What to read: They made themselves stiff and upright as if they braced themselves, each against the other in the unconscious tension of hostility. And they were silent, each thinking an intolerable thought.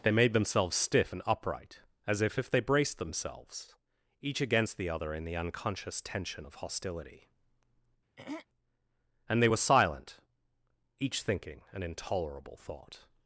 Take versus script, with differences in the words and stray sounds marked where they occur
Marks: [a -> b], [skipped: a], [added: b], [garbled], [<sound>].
They made themselves stiff and upright as if [added: if] they braced themselves, each against the other in the unconscious tension of hostility. [throat clearing] And they were silent, each thinking an intolerable thought.